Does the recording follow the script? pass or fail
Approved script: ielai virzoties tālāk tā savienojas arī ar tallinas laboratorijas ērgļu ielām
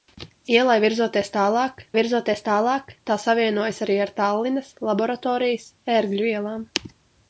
fail